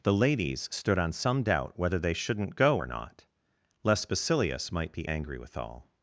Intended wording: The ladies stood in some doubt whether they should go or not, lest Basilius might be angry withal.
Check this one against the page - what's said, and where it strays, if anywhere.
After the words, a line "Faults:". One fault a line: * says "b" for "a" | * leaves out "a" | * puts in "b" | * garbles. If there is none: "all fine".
The ladies stood on some doubt whether they shouldn't go or not, lest Basilius might be angry withal.
Faults:
* says "on" for "in"
* says "shouldn't" for "should"